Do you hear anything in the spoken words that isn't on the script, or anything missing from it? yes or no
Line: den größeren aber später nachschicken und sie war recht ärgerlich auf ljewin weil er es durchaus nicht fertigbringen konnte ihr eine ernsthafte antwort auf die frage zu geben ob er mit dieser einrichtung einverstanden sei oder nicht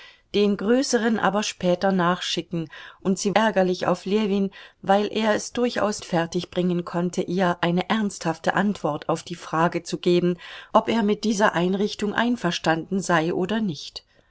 yes